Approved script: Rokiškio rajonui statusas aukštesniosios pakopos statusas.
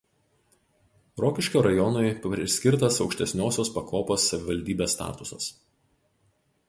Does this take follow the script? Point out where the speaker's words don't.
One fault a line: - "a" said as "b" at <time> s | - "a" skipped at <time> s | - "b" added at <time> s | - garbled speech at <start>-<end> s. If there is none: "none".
- "statusas" said as "priskirtas" at 2.2 s
- "savivaldybės" added at 4.3 s